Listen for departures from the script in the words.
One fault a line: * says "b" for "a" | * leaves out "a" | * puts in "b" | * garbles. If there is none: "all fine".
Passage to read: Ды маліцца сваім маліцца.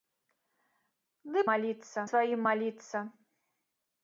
all fine